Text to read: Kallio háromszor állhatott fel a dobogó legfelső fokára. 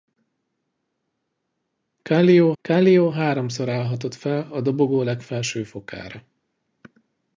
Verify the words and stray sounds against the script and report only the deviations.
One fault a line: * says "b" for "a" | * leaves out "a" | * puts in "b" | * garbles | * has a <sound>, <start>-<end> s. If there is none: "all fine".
* puts in "kallio"